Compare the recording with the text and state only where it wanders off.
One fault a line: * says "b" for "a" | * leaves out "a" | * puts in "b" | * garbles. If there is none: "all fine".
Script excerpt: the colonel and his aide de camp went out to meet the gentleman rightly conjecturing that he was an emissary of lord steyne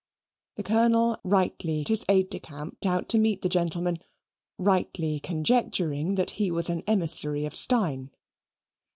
* says "rightly" for "and"
* leaves out "went"
* leaves out "lord"